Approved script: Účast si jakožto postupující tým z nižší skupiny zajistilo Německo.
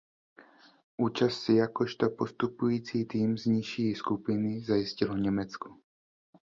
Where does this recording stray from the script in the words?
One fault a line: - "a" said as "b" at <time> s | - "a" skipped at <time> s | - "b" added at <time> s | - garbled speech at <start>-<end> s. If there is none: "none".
none